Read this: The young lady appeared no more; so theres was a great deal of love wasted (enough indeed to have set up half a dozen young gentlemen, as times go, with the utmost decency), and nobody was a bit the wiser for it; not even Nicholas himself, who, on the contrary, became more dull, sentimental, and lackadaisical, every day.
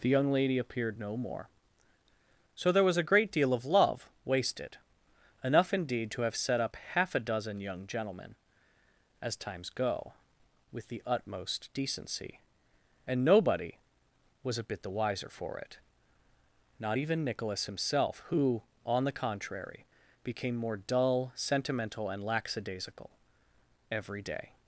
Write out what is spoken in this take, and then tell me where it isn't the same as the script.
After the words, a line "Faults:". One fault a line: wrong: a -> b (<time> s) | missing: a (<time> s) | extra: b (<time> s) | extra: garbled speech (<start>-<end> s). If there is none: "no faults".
The young lady appeared no more; so there was a great deal of love wasted (enough indeed to have set up half a dozen young gentlemen, as times go, with the utmost decency), and nobody was a bit the wiser for it; not even Nicholas himself, who, on the contrary, became more dull, sentimental, and lackadaisical, every day.
Faults:
wrong: theres -> there (2.7 s)